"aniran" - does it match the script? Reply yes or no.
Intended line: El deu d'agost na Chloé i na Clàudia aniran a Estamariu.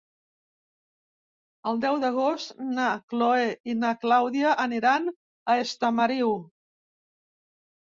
yes